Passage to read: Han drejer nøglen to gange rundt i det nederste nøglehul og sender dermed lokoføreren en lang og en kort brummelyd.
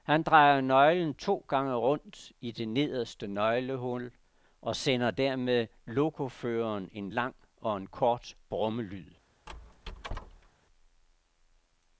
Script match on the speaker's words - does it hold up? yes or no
yes